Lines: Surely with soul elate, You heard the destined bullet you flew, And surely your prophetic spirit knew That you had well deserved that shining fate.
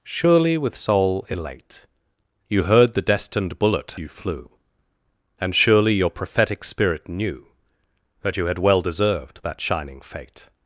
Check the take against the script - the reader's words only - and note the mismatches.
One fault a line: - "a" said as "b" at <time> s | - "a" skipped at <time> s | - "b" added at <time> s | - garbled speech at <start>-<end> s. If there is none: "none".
none